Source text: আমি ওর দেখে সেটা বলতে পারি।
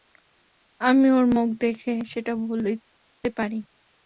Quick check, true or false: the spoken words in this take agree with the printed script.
false